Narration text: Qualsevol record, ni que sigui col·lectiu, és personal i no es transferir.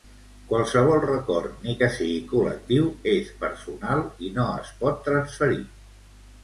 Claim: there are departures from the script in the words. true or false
true